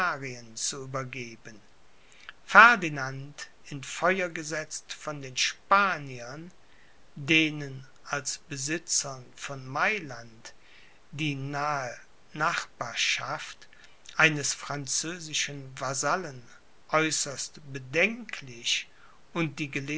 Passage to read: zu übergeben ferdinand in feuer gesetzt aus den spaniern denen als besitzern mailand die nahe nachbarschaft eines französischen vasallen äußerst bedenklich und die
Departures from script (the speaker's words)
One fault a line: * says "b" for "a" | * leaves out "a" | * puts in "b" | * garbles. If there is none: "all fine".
* says "von" for "aus"
* puts in "von"